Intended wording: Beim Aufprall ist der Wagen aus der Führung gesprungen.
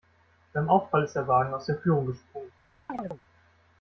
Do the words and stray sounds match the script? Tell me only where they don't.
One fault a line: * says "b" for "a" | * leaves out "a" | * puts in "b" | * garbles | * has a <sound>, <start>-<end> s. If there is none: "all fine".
* has a chirp, 2.9-3.2 s